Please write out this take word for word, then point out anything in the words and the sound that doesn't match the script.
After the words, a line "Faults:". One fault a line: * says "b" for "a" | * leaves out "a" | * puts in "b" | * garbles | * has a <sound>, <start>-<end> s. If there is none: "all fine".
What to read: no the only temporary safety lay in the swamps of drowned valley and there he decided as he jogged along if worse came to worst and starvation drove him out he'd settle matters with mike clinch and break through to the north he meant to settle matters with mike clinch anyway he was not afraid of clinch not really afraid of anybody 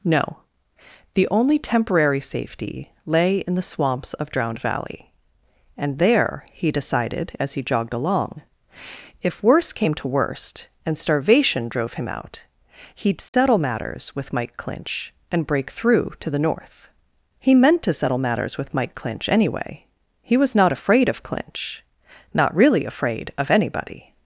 no the only temporary safety lay in the swamps of drowned valley and there he decided as he jogged along if worse came to worst and starvation drove him out he'd settle matters with mike clinch and break through to the north he meant to settle matters with mike clinch anyway he was not afraid of clinch not really afraid of anybody
Faults:
* has a dropout, 13.3-13.3 s